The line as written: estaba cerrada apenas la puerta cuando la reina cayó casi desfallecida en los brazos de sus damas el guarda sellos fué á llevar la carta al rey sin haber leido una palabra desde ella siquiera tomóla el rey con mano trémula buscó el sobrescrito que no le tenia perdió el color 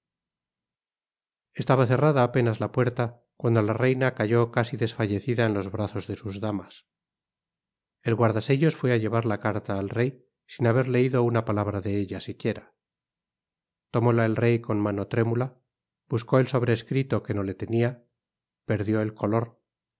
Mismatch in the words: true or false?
true